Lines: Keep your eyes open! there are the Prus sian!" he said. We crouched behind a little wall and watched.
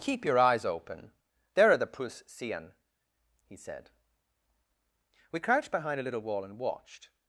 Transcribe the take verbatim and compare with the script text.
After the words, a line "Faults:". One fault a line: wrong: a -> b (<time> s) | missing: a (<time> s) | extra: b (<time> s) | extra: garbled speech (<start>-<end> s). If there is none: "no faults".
Keep your eyes open! there are the Prus sian!" he said. We crouched behind a little wall and watched.
Faults:
no faults